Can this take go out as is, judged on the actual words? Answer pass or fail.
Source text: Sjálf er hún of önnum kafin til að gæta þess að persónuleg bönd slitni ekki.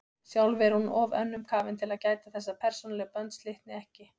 pass